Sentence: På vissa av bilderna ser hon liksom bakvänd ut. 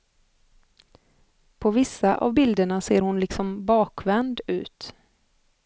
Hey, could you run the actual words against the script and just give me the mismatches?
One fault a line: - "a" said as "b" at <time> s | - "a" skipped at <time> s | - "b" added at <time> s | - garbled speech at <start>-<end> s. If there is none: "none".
none